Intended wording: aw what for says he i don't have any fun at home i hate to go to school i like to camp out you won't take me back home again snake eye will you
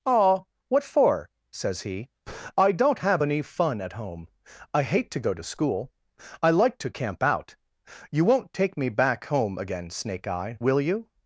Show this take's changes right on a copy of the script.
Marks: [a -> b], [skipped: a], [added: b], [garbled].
aw what for says he i don't have any fun at home i hate to go to school i like to camp out you won't take me back home again snake eye will you